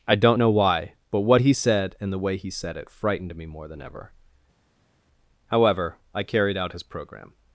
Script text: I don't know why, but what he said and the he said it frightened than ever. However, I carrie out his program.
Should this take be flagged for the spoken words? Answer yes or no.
yes